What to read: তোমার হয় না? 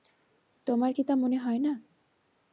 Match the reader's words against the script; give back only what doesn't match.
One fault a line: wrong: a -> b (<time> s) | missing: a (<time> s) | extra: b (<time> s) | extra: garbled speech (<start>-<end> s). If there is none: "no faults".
extra: কি তা মনে (0.9 s)